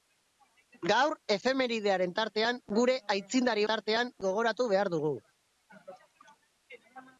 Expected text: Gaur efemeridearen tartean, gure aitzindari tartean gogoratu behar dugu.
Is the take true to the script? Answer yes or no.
yes